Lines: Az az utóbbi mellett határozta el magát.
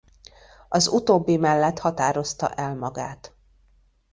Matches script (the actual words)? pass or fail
fail